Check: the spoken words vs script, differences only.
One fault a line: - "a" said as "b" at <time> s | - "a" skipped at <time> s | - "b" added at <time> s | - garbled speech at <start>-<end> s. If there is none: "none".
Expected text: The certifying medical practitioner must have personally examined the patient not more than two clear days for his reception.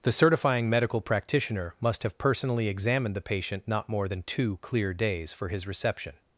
none